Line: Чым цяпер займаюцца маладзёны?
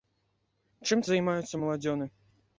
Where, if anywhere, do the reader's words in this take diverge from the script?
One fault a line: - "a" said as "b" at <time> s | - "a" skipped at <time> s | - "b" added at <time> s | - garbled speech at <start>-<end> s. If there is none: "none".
- "цяпер" skipped at 1.1 s